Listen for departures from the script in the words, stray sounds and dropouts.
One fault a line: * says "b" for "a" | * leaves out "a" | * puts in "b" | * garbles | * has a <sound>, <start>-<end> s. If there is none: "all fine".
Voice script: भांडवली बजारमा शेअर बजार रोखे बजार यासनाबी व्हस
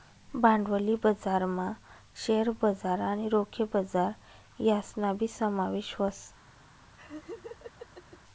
* puts in "आणि"
* puts in "समावेश"
* has a laugh, 7.0-8.2 s